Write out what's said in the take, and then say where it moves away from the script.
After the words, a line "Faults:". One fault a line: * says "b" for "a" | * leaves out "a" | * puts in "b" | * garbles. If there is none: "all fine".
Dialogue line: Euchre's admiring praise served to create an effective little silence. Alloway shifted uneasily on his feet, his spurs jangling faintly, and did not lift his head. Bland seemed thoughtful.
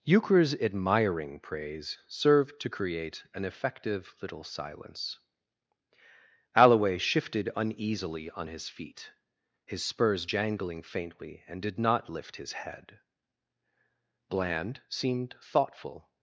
Euchre's admiring praise served to create an effective little silence. Alloway shifted uneasily on his feet, his spurs jangling faintly, and did not lift his head. Bland seemed thoughtful.
Faults:
all fine